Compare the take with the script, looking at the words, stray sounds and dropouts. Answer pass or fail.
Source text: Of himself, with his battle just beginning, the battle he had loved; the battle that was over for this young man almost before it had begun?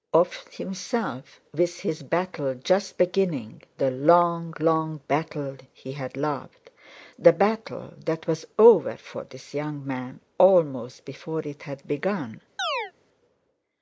fail